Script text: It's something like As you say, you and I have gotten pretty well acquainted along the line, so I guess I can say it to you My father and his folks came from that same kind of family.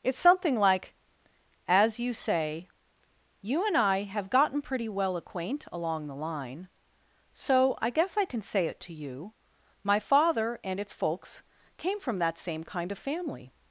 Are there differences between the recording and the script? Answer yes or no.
yes